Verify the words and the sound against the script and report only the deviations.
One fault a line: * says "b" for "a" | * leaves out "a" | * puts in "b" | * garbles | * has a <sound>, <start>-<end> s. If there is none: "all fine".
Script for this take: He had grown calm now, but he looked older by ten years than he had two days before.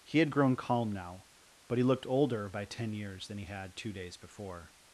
all fine